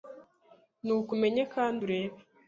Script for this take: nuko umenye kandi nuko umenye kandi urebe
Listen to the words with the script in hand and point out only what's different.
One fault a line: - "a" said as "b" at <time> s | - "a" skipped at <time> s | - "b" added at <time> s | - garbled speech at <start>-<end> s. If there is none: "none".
- "nuko umenye kandi" skipped at 1.8 s